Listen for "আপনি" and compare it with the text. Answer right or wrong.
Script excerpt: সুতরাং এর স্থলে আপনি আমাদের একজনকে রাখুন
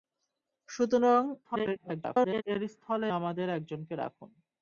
wrong